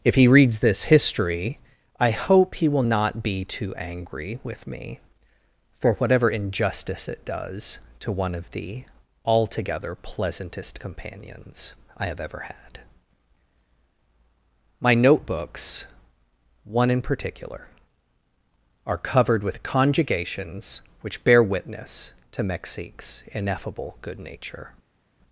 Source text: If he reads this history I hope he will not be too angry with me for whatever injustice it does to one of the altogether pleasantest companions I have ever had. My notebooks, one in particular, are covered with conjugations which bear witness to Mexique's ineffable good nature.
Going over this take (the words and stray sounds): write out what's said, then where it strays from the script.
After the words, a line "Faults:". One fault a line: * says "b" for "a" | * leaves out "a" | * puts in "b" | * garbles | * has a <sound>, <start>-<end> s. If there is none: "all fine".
If he reads this history I hope he will not be too angry with me for whatever injustice it does to one of the altogether pleasantest companions I have ever had. My notebooks, one in particular, are covered with conjugations which bear witness to Mexique's ineffable good nature.
Faults:
all fine